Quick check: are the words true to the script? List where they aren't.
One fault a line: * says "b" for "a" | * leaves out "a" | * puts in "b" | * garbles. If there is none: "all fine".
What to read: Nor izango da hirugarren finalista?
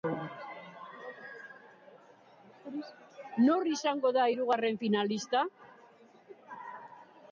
all fine